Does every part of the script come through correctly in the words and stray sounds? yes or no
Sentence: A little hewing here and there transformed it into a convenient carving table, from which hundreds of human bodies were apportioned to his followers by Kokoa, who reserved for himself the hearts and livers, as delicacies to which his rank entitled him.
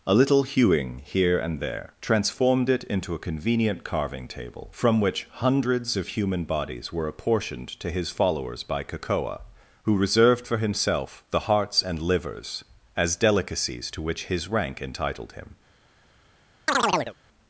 no